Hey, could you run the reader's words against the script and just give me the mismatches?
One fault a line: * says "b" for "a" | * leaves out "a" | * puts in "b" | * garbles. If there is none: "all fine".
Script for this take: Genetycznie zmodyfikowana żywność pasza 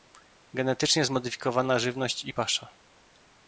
* puts in "i"